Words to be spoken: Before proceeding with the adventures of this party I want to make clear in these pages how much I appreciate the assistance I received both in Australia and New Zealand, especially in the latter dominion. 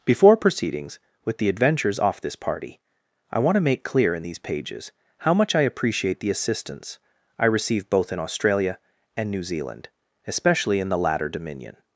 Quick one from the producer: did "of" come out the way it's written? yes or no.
no